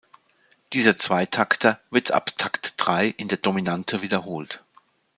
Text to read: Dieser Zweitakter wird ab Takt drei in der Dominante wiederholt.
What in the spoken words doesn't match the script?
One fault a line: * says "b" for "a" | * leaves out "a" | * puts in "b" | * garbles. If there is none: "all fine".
all fine